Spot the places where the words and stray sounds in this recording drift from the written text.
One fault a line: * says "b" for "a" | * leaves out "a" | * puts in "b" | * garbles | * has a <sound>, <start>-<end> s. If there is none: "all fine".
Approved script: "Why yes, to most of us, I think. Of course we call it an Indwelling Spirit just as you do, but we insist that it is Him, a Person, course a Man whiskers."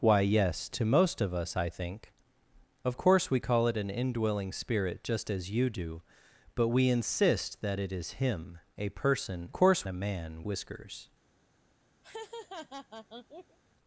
* has a laugh, 12.0-13.6 s